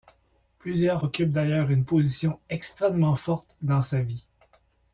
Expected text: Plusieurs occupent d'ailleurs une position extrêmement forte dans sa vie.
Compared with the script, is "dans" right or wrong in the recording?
right